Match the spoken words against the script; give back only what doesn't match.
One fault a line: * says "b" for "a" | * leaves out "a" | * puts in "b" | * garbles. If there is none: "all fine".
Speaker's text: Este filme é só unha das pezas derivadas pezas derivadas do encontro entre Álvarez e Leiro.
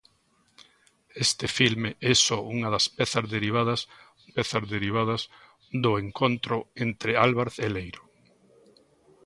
all fine